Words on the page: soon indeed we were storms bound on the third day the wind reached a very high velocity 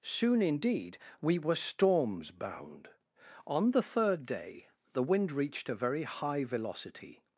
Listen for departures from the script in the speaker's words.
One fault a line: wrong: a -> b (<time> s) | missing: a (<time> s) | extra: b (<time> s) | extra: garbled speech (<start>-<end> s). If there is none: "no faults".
no faults